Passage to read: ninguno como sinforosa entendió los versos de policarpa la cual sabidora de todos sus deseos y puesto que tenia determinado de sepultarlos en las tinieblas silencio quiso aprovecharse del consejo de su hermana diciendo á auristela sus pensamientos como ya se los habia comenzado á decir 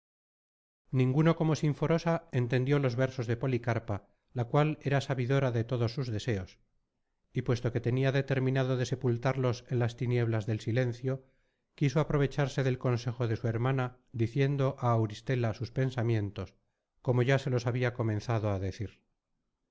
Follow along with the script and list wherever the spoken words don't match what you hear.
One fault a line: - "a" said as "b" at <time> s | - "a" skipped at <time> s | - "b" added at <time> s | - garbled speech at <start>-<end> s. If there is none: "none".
- "era" added at 4.8 s
- "del" added at 10.5 s